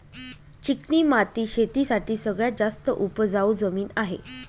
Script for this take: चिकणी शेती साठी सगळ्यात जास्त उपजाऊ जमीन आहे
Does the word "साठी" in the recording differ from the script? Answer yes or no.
no